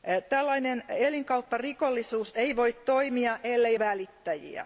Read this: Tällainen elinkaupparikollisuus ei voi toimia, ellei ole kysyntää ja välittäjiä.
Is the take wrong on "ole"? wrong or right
wrong